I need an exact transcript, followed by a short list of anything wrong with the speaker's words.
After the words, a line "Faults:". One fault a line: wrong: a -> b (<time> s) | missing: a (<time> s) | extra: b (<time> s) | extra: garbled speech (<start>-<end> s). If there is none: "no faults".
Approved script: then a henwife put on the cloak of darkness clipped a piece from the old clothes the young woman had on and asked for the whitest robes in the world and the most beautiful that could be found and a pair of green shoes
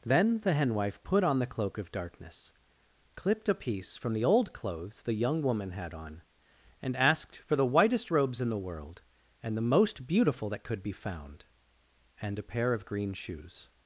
then the henwife put on the cloak of darkness clipped a piece from the old clothes the young woman had on and asked for the whitest robes in the world and the most beautiful that could be found and a pair of green shoes
Faults:
wrong: a -> the (0.4 s)